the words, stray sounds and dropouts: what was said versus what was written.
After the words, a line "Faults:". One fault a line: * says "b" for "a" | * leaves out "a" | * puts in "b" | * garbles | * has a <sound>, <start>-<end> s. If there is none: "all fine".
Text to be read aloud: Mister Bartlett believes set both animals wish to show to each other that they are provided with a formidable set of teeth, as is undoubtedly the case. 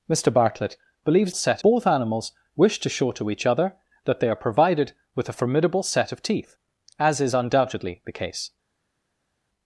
Mister Bartlett believes set both animals wish to show to each other that they are provided with a formidable set of teeth, as is undoubtedly the case.
Faults:
all fine